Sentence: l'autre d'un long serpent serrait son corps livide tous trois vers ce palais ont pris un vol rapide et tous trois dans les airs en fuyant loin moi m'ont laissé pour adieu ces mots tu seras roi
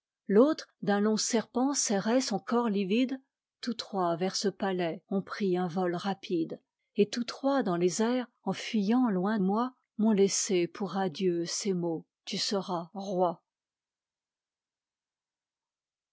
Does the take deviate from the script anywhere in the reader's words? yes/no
no